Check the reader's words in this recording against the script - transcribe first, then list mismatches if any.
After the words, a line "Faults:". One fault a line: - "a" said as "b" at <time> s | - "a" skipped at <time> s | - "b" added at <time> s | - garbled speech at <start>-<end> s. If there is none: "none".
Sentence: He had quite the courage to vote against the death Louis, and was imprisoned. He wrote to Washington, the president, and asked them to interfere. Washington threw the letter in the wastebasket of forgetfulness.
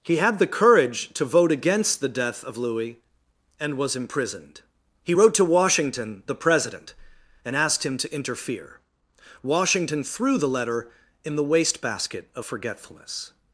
He had the courage to vote against the death of Louis, and was imprisoned. He wrote to Washington, the president, and asked him to interfere. Washington threw the letter in the wastebasket of forgetfulness.
Faults:
- "quite" skipped at 0.4 s
- "of" added at 2.4 s
- "them" said as "him" at 7.8 s